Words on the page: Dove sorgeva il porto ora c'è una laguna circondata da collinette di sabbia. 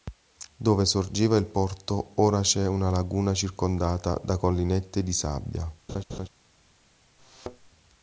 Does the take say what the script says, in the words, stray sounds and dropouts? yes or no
no